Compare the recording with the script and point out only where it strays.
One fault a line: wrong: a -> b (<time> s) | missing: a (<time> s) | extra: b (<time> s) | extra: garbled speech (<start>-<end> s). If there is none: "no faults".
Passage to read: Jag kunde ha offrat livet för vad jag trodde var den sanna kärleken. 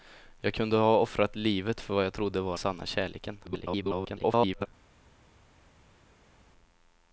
missing: den (2.6 s)
extra: garbled speech (3.4-4.7 s)